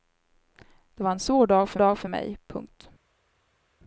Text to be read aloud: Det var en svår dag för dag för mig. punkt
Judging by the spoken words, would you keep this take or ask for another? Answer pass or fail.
pass